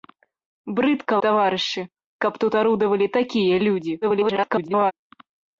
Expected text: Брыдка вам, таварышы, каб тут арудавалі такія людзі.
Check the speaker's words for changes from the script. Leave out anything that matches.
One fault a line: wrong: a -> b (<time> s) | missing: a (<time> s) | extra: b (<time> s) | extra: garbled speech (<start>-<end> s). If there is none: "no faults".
missing: вам (1.2 s)
extra: garbled speech (4.0-4.9 s)